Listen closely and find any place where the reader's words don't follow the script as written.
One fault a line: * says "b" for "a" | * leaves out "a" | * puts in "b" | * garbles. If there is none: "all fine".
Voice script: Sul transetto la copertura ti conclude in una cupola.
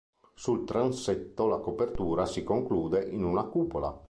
* says "si" for "ti"